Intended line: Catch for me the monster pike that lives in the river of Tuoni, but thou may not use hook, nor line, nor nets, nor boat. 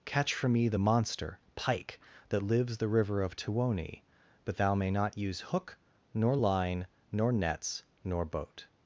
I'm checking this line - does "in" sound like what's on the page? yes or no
no